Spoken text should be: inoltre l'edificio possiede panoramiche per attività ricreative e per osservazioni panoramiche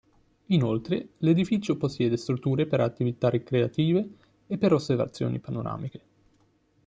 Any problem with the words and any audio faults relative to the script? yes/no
yes